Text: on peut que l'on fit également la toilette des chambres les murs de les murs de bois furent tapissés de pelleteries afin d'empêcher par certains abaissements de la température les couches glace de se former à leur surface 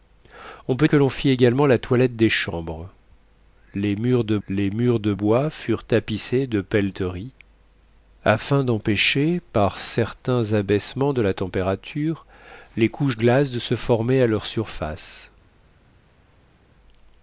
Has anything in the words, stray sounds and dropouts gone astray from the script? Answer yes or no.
no